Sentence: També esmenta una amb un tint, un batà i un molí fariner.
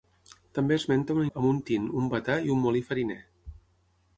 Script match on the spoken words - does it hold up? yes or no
yes